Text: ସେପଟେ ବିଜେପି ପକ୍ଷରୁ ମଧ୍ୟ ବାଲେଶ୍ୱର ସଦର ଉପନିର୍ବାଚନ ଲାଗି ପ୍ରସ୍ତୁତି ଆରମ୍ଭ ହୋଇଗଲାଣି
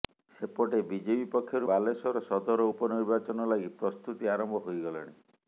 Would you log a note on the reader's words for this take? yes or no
yes